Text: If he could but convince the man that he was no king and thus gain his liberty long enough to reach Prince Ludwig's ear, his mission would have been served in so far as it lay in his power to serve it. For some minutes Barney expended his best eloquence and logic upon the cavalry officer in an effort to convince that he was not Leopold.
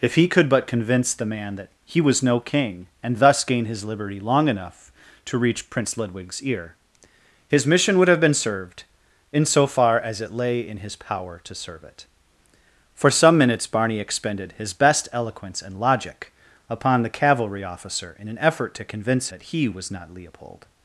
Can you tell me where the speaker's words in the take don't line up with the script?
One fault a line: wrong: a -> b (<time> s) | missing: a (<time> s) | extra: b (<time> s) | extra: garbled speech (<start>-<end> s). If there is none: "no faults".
no faults